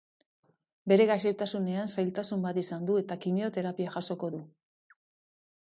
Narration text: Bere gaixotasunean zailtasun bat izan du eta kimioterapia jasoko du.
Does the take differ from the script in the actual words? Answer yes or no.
no